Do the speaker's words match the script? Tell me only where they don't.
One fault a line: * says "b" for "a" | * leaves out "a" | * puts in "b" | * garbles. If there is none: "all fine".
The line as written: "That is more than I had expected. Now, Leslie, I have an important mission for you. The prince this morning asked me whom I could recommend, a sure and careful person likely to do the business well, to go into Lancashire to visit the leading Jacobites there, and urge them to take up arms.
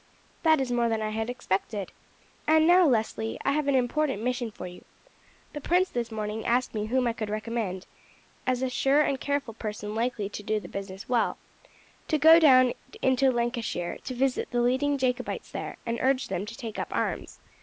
* puts in "And"
* puts in "as"
* puts in "down"